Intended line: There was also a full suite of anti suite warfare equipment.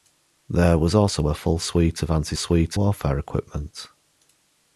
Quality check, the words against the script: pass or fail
pass